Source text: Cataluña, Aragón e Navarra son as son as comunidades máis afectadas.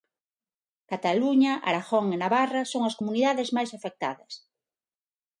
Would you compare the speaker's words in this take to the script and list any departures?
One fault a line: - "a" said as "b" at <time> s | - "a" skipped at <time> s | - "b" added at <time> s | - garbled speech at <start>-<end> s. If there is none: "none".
- "son as" skipped at 3.0 s